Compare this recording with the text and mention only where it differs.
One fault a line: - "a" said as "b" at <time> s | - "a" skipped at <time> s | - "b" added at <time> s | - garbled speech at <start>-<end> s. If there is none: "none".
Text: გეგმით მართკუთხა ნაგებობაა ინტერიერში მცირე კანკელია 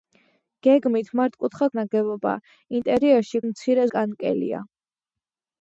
none